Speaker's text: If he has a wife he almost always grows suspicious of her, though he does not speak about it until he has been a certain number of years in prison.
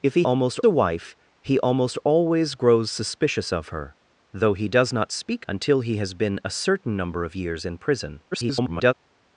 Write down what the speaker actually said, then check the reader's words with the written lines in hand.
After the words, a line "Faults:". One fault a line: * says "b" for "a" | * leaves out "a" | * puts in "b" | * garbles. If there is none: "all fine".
If he almost a wife he almost always grows suspicious of her, though he does not speak until he has been a certain number of years in prison. [garbled]
Faults:
* says "almost" for "has"
* leaves out "about it"
* garbles